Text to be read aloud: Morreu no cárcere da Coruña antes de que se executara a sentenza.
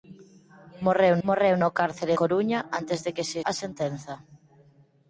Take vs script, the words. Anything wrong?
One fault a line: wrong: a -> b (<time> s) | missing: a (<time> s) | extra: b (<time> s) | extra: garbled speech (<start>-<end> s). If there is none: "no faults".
extra: morreu (1.3 s)
missing: da (2.1 s)
missing: executara (3.4 s)